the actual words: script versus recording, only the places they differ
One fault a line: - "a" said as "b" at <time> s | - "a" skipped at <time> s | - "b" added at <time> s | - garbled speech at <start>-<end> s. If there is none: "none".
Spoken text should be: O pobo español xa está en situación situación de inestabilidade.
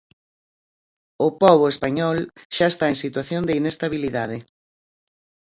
- "situación" skipped at 3.4 s